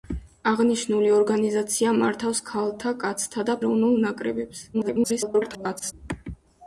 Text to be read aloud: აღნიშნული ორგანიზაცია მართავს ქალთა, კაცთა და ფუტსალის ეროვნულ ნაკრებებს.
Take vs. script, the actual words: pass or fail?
fail